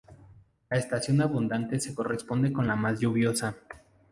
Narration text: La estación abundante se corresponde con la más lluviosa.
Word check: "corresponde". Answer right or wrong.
right